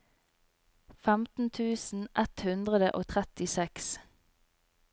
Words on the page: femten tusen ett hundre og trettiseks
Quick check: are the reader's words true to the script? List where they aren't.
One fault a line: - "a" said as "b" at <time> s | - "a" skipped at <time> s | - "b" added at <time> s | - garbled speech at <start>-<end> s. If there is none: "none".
none